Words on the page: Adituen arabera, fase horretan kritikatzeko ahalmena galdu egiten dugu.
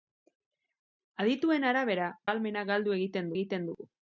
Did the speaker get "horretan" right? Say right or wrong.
wrong